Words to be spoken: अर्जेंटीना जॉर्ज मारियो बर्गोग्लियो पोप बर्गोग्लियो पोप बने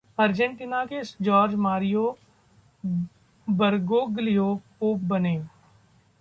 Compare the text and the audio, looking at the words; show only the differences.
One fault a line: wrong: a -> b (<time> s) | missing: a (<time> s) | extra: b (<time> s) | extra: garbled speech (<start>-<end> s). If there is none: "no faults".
extra: के (0.8 s)
missing: बर्गोग्लियो पोप (5.0 s)